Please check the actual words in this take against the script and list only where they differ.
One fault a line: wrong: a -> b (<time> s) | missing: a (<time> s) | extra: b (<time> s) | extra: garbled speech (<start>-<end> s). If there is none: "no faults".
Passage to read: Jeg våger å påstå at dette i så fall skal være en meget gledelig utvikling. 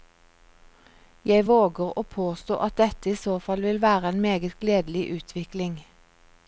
wrong: skal -> vil (3.7 s)